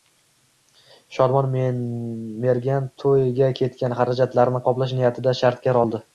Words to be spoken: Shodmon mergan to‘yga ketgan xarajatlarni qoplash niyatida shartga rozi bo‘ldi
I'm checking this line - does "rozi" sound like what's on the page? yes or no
no